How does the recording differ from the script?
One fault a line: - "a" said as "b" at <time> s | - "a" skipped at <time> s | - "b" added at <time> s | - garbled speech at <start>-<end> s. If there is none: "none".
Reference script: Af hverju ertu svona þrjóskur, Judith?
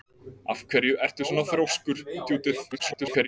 - garbled speech at 2.7-3.3 s